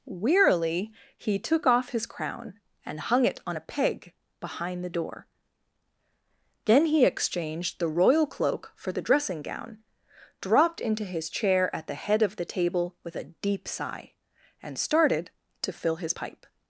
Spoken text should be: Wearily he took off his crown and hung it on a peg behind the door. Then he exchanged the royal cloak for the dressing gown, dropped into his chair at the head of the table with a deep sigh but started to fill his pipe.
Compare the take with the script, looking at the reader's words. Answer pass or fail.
fail